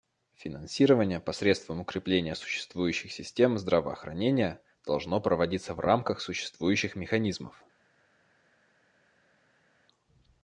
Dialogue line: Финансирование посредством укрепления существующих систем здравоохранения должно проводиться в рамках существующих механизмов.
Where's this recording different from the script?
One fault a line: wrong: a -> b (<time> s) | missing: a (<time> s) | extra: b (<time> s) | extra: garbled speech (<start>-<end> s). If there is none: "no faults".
no faults